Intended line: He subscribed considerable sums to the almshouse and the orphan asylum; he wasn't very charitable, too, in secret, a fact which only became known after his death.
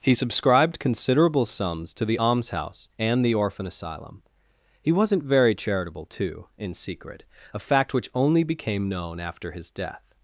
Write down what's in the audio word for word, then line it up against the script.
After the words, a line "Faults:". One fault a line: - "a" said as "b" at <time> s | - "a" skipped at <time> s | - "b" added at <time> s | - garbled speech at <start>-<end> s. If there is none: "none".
He subscribed considerable sums to the almshouse and the orphan asylum; he wasn't very charitable, too, in secret, a fact which only became known after his death.
Faults:
none